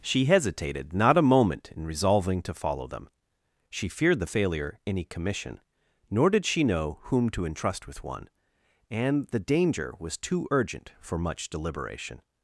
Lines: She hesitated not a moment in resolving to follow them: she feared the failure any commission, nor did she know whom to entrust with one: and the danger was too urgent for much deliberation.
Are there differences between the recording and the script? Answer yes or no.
no